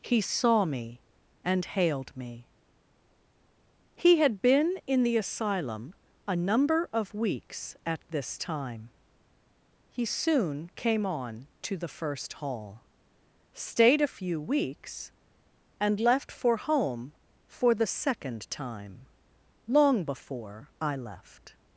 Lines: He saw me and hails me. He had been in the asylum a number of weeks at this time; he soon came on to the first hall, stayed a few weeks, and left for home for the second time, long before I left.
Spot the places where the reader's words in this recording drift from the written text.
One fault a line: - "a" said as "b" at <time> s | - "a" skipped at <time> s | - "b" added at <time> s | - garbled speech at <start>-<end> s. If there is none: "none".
- "hails" said as "hailed" at 1.6 s